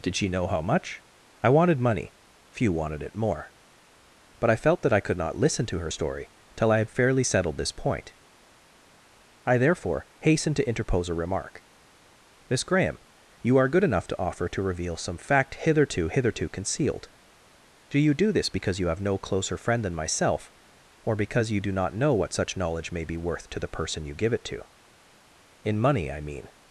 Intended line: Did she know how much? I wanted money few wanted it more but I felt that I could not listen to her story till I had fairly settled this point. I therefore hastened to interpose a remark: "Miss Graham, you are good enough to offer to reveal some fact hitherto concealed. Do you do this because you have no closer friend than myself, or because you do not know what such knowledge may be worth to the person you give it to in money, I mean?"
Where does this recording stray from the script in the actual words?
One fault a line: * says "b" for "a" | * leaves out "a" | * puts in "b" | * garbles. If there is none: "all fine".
* puts in "hitherto"